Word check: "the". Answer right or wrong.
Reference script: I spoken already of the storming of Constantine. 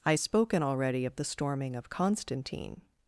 right